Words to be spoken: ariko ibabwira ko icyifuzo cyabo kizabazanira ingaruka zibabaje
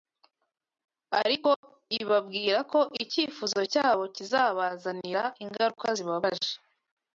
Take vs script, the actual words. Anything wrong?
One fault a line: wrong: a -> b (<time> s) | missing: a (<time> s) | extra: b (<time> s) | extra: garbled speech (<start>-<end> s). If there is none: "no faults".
no faults